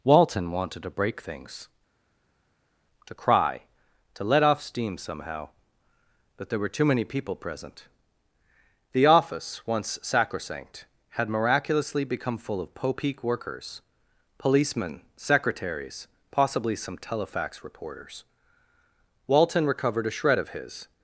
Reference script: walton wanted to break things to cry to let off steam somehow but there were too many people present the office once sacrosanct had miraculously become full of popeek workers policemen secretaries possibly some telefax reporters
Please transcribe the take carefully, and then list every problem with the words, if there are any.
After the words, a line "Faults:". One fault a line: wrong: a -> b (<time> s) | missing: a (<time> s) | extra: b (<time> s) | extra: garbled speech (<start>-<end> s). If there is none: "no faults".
walton wanted to break things to cry to let off steam somehow but there were too many people present the office once sacrosanct had miraculously become full of popeek workers policemen secretaries possibly some telefax reporters walton recovered a shred of his
Faults:
extra: walton recovered a shred of his (19.3 s)